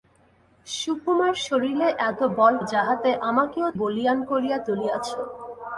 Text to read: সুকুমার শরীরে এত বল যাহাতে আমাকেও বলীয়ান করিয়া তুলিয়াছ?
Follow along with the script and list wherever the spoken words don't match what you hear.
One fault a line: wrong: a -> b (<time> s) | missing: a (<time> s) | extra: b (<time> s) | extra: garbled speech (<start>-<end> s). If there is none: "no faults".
no faults